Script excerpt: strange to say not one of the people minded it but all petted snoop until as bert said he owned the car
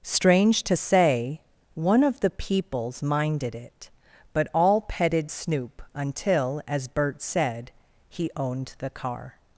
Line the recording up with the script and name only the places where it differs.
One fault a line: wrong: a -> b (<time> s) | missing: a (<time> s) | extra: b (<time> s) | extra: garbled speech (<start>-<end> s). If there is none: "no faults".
missing: not (1.4 s)
wrong: people -> peoples (2.3 s)